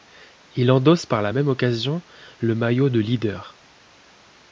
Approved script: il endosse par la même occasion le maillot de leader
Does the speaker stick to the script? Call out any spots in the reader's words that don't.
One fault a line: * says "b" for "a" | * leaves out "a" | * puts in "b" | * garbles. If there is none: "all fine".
all fine